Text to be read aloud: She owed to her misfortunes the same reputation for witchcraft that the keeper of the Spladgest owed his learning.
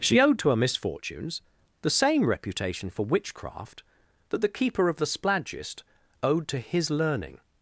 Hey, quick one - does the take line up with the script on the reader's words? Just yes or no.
no